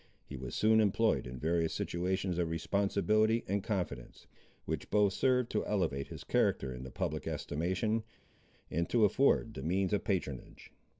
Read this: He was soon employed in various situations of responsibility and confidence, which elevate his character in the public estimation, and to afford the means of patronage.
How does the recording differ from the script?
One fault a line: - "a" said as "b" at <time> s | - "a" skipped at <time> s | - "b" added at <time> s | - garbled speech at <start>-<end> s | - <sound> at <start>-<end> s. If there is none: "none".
- "both served to" added at 4.9 s